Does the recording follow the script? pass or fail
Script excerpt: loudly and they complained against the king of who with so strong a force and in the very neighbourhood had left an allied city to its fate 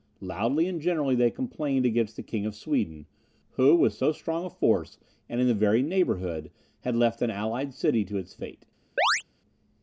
fail